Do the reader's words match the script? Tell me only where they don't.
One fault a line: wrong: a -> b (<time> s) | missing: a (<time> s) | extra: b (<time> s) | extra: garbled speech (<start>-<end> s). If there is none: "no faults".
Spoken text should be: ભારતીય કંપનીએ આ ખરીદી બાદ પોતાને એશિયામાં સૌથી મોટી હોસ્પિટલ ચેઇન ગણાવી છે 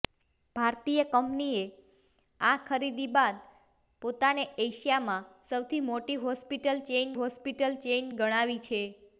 extra: હોસ્પિટલ ચેઇન (7.1 s)